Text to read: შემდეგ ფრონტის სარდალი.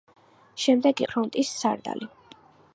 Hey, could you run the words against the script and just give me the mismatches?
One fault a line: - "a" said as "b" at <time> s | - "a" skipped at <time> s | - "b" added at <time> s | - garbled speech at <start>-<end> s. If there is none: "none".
none